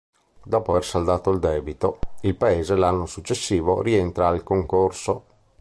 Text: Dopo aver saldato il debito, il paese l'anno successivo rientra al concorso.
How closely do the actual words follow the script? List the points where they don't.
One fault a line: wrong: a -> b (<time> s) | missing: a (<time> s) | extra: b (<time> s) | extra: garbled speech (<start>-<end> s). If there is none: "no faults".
no faults